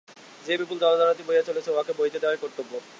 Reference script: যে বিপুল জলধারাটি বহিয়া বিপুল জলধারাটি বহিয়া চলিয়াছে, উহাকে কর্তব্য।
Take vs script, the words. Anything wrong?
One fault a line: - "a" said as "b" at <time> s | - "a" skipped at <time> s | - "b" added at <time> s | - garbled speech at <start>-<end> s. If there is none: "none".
- "বিপুল জলধারাটি বহিয়া চলিয়াছে উহাকে" said as "চলিয়াছে উহাকে বহিতে দেওয়াই" at 1.4 s